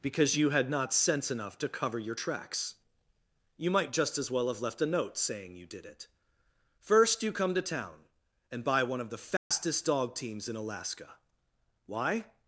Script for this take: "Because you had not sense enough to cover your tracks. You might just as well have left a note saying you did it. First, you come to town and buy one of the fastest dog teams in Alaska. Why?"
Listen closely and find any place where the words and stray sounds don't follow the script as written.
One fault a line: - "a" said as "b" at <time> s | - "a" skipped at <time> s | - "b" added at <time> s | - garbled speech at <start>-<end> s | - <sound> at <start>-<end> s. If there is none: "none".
- dropout at 9.4-9.5 s